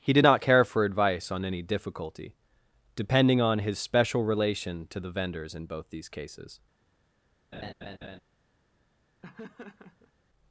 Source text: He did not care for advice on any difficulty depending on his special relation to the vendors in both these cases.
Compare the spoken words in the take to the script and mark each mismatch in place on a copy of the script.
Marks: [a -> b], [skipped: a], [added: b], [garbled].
He did not care for advice on any difficulty depending on his special relation to the vendors in both these cases.